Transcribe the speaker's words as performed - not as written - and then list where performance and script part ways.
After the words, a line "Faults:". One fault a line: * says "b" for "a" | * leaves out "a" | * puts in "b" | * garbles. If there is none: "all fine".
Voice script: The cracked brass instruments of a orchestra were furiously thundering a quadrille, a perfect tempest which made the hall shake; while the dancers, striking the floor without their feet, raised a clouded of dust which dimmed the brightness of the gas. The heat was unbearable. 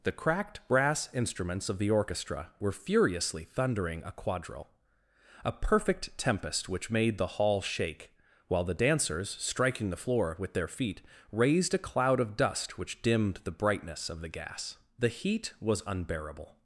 The cracked brass instruments of the orchestra were furiously thundering a quadrille, a perfect tempest which made the hall shake; while the dancers, striking the floor with their feet, raised a cloud of dust which dimmed the brightness of the gas. The heat was unbearable.
Faults:
* says "the" for "a"
* says "with" for "without"
* says "cloud" for "clouded"